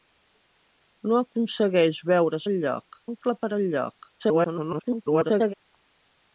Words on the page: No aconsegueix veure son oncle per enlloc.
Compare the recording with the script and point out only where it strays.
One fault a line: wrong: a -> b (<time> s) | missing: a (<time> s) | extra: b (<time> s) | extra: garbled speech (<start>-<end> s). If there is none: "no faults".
wrong: son -> enlloc (2.5 s)
extra: garbled speech (4.2-5.5 s)